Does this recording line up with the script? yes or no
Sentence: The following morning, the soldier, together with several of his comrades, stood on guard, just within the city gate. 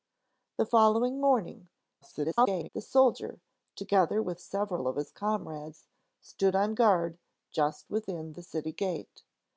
no